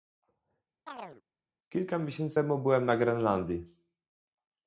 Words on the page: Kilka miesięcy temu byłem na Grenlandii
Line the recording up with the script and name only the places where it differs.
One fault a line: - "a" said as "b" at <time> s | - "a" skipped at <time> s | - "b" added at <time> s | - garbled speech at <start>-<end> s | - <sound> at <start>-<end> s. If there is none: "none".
- chirp at 0.9-1.2 s